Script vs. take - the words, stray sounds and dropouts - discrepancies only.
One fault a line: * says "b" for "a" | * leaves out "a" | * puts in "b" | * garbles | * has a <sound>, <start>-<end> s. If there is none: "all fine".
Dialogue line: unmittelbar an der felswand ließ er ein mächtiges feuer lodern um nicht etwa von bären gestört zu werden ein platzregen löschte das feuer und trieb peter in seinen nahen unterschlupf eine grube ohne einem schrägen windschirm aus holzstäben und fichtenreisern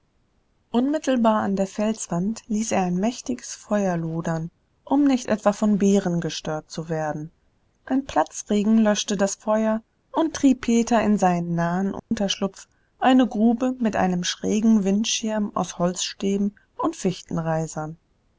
* has a dropout, 12.0-12.1 s
* says "mit" for "ohne"